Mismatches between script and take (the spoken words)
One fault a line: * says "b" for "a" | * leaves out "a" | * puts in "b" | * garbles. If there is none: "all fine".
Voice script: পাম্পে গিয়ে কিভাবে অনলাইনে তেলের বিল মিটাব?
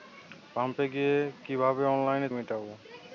* leaves out "তেলের বিল"